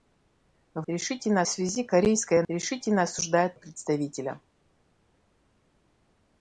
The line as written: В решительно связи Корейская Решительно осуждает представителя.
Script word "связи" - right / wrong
right